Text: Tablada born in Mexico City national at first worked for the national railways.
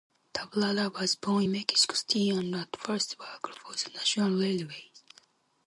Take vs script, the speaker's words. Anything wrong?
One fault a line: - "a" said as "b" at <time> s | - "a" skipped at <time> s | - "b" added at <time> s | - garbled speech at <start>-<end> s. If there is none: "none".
- "was" added at 0.9 s
- "national" said as "and" at 2.3 s